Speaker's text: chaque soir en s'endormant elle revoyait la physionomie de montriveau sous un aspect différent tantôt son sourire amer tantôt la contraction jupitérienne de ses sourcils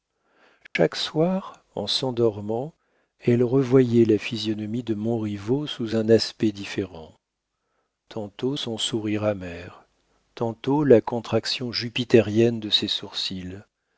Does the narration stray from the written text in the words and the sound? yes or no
yes